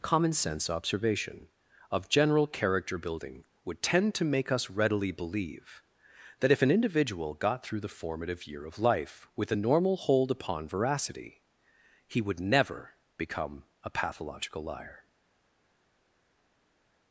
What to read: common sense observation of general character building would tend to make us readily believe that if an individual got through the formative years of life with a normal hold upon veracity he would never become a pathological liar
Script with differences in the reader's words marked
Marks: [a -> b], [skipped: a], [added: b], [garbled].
common sense observation of general character building would tend to make us readily believe that if an individual got through the formative [years -> year] of life with a normal hold upon veracity he would never become a pathological liar